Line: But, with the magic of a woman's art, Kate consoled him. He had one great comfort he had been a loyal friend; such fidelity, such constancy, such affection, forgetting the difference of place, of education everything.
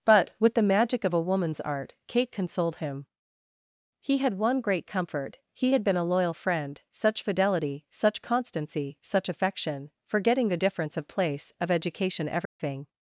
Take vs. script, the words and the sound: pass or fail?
fail